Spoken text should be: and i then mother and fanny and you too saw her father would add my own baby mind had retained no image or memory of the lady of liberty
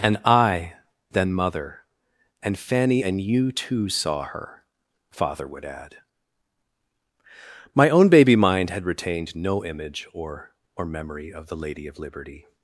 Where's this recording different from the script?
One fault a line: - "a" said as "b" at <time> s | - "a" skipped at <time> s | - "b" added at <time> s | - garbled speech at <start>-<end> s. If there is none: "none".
- "or" added at 10.7 s